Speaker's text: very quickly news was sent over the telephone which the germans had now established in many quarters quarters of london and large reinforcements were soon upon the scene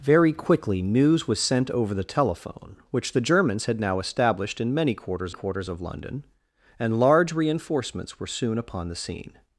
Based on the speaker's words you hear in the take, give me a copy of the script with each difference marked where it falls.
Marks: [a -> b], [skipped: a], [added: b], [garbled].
very quickly news was sent over the telephone which the germans had now established in many quarters quarters of london and large reinforcements were soon upon the scene